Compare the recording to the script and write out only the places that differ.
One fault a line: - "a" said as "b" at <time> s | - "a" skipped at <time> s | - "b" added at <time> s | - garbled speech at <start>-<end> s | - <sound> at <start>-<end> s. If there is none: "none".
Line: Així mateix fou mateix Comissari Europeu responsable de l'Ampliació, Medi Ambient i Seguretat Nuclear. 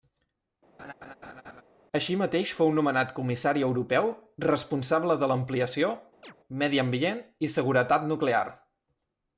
- laugh at 0.8-1.6 s
- "mateix" said as "nomenat" at 2.8 s
- chirp at 6.2-6.3 s